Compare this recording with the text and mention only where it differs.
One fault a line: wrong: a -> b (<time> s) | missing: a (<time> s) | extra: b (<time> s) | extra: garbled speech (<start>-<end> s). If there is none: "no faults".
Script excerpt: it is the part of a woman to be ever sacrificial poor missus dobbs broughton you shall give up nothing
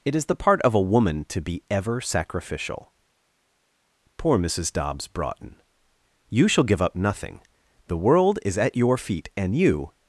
extra: the world is at your feet and you (7.8 s)